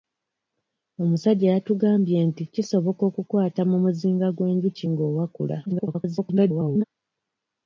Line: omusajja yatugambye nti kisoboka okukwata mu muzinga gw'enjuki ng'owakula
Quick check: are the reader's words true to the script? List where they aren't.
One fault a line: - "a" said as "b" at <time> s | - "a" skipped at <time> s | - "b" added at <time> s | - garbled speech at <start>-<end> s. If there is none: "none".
- garbled speech at 5.7-6.8 s